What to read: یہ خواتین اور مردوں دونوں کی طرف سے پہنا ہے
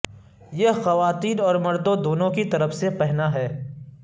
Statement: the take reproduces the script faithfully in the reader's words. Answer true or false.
true